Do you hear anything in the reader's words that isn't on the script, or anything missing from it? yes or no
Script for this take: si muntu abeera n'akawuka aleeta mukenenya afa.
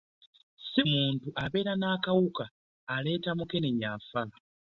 no